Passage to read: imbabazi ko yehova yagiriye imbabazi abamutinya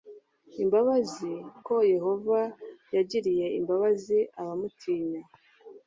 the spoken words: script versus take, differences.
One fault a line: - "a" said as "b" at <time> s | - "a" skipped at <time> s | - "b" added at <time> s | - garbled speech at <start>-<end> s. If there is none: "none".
none